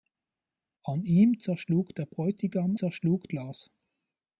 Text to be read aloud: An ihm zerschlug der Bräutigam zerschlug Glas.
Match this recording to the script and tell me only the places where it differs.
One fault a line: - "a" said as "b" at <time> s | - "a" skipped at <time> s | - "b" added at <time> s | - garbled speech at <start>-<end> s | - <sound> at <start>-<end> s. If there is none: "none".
none